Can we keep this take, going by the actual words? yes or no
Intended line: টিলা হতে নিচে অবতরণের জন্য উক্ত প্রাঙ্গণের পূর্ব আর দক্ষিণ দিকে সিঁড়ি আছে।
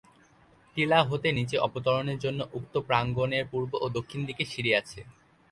no